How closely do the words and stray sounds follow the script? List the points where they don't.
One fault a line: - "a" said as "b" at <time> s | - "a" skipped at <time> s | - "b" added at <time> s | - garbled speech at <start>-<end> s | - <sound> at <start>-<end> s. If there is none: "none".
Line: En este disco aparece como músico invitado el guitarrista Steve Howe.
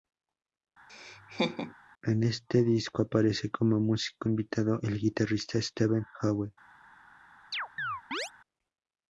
- laugh at 0.9-1.7 s
- chirp at 7.5-8.3 s